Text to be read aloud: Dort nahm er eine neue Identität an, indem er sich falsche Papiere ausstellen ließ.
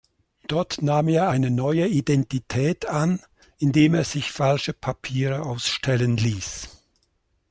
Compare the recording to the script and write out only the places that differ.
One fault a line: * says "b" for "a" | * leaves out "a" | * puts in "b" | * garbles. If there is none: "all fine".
all fine